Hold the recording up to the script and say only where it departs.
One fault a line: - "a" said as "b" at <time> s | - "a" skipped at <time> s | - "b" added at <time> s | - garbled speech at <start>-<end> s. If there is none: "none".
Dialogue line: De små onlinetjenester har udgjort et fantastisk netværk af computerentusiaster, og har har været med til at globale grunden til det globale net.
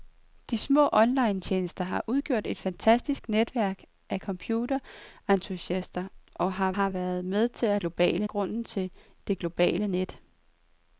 none